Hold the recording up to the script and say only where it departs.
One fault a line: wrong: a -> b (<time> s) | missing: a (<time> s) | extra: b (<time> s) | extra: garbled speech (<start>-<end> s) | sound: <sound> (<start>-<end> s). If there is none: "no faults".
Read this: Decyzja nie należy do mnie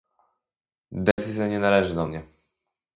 sound: dropout (1.1-1.2 s)